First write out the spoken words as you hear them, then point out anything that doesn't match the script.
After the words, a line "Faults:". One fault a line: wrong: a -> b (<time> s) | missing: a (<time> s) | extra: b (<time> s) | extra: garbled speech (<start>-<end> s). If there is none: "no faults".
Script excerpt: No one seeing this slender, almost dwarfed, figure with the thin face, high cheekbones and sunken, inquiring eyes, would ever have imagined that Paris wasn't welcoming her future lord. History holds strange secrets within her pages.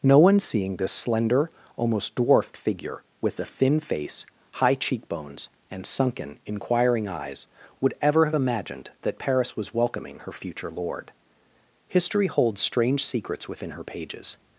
No one seeing this slender, almost dwarfed, figure with the thin face, high cheekbones and sunken, inquiring eyes, would ever have imagined that Paris was welcoming her future lord. History holds strange secrets within her pages.
Faults:
wrong: wasn't -> was (9.6 s)